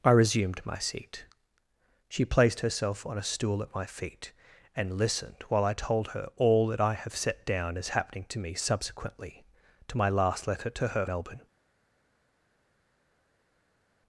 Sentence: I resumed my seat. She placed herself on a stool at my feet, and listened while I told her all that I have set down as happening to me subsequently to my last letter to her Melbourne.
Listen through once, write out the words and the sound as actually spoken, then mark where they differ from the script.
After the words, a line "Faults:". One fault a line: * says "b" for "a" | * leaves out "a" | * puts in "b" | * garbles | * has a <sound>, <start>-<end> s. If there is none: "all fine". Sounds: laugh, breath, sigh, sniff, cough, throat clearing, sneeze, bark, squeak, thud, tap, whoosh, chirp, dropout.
I resumed my seat. She placed herself on a stool at my feet, and listened while I told her all that I have set down as happening to me subsequently to my last letter to her Melbourne.
Faults:
all fine